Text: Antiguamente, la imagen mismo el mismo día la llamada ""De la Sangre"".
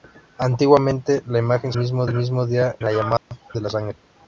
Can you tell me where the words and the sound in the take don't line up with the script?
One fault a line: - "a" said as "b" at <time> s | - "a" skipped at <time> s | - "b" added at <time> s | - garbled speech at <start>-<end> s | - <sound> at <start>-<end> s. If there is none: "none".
- dropout at 3.2-3.3 s